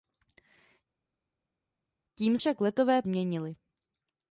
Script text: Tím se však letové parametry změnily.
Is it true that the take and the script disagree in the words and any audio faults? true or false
true